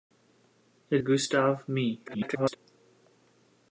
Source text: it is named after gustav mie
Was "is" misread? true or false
true